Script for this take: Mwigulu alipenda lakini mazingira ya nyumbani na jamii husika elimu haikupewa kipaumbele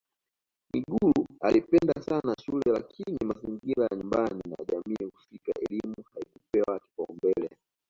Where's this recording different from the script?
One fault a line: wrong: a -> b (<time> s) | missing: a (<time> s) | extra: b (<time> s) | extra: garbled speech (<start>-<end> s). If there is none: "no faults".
extra: sana shule (2.0 s)